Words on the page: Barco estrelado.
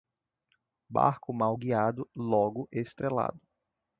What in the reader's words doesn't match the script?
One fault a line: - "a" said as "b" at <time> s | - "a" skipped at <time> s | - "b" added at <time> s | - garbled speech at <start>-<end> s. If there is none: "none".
- "mal guiado logo" added at 1.3 s